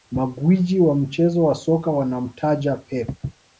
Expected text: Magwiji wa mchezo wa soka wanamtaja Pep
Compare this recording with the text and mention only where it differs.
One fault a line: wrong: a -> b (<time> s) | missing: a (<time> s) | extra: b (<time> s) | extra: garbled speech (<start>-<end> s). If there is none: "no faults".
no faults